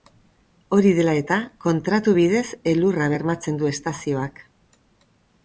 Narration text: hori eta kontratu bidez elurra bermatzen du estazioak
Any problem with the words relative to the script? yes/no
yes